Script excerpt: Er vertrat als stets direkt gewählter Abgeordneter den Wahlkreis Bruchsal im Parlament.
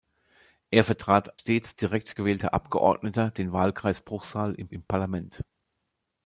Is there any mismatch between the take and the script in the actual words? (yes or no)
yes